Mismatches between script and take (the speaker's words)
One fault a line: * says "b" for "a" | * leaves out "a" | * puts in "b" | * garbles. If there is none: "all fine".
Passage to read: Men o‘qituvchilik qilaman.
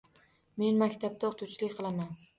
* puts in "maktabda"